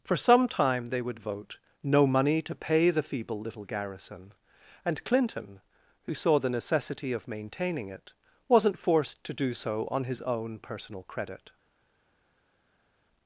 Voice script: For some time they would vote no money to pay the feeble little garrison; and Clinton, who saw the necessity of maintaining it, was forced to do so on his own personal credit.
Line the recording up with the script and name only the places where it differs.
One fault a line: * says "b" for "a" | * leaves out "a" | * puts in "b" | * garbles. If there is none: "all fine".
* says "wasn't" for "was"